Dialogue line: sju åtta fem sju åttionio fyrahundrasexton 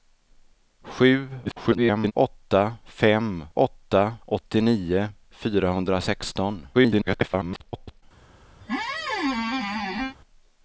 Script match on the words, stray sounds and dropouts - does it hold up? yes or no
no